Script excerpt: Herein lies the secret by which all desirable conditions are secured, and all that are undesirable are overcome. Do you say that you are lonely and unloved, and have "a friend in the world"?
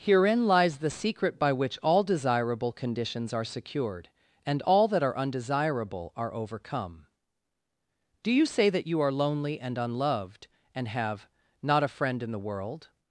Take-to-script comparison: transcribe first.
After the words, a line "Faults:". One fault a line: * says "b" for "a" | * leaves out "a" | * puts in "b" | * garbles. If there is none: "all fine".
Herein lies the secret by which all desirable conditions are secured, and all that are undesirable are overcome. Do you say that you are lonely and unloved, and have "not a friend in the world"?
Faults:
* puts in "not"